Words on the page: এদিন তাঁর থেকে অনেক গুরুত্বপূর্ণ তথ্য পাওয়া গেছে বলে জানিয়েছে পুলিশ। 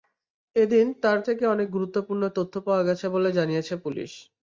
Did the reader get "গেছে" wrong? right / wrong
right